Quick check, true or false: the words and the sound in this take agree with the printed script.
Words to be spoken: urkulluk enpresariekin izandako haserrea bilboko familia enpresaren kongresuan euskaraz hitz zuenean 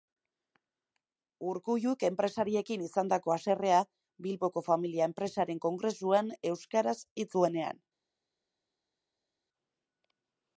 true